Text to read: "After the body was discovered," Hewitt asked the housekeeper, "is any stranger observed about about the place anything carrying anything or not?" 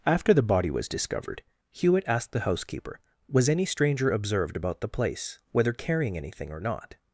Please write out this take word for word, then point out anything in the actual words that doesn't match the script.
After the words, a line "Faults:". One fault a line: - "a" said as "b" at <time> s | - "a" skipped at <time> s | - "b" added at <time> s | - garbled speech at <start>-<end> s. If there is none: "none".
"After the body was discovered," Hewitt asked the housekeeper, "was any stranger observed about the place whether carrying anything or not?"
Faults:
- "is" said as "was" at 3.3 s
- "about" skipped at 4.8 s
- "anything" said as "whether" at 5.5 s